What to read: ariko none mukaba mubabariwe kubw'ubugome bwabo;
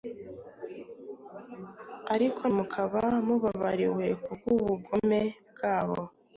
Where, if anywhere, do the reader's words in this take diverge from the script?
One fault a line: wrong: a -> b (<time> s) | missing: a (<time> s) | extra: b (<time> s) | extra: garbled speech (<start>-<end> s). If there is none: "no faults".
missing: none (2.4 s)